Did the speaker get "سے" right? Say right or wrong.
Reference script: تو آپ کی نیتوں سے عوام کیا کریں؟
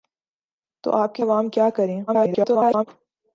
wrong